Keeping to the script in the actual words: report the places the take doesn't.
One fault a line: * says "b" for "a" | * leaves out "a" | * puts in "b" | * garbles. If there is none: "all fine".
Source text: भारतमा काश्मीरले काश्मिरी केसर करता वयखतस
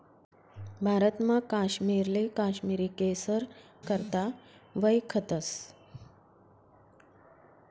all fine